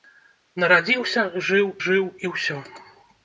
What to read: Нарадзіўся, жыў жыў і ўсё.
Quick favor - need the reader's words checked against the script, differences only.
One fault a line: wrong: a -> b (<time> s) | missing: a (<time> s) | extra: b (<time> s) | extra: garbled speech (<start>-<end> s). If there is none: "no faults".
no faults